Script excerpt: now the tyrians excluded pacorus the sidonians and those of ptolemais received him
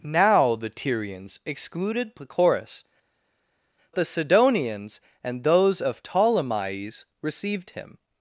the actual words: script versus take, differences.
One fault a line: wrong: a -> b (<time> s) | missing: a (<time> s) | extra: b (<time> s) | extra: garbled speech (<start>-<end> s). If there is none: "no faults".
no faults